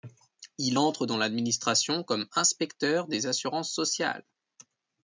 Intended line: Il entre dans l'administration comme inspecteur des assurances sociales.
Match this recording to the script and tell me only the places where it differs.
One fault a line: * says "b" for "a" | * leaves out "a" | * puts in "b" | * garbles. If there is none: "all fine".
all fine